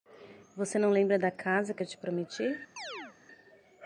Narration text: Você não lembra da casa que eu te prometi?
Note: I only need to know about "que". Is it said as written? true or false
true